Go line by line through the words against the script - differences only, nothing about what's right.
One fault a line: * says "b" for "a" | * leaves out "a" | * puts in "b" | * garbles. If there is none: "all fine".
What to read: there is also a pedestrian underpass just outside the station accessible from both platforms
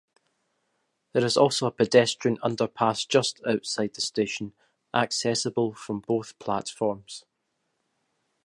all fine